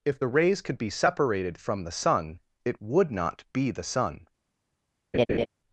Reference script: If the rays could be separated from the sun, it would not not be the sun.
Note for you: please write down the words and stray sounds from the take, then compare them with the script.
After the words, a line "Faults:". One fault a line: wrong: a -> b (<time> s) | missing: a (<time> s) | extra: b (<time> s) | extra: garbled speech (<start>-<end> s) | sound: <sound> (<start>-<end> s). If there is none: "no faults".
If the rays could be separated from the sun, it would not be the sun.
Faults:
missing: not (3.4 s)
sound: laugh (5.1-5.5 s)